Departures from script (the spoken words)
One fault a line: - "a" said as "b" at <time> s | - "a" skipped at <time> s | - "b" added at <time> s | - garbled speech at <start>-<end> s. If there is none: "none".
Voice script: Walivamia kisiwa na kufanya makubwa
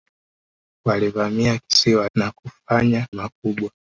none